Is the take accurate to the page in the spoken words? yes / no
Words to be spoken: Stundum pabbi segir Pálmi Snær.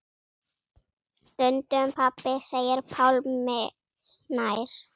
yes